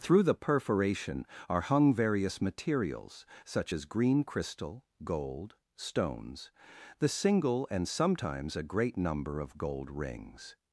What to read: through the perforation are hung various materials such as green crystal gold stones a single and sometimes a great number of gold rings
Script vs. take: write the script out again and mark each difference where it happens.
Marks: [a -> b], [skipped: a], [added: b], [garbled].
through the perforation are hung various materials such as green crystal gold stones [a -> the] single and sometimes a great number of gold rings